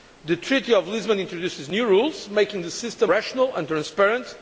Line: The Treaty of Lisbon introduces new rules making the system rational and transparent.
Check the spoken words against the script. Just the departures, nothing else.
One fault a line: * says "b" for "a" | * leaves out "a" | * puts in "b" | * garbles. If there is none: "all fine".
all fine